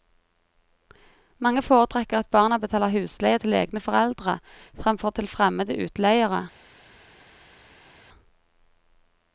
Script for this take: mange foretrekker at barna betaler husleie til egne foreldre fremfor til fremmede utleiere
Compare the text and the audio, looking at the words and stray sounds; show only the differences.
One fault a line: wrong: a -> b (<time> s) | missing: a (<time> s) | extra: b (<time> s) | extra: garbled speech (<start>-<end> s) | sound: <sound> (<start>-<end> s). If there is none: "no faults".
no faults